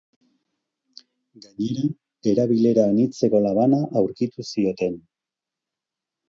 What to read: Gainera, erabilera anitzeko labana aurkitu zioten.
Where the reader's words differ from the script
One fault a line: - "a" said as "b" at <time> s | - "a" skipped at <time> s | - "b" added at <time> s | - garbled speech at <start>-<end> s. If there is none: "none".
none